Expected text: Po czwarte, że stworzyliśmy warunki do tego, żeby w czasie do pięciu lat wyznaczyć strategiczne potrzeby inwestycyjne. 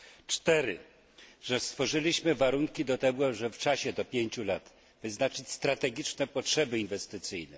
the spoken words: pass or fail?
pass